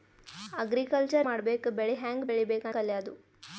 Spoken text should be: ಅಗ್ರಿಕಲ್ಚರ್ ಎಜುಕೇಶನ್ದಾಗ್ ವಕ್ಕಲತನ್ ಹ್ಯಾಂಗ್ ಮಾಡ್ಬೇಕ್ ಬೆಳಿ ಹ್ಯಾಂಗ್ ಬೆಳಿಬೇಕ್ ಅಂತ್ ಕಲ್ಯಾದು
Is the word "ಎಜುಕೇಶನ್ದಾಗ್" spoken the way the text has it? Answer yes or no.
no